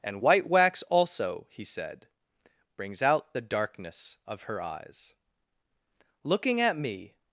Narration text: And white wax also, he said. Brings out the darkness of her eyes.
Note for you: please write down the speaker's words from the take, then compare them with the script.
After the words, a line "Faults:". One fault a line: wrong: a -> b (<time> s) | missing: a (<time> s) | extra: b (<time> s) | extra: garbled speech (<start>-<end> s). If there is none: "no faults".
And white wax also, he said. Brings out the darkness of her eyes. Looking at me
Faults:
extra: Looking at me (6.2 s)